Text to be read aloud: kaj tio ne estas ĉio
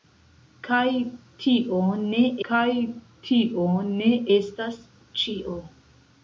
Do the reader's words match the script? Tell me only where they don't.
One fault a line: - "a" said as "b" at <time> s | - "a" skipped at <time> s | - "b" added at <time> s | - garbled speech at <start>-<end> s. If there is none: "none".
- "kaj tio ne" added at 2.5 s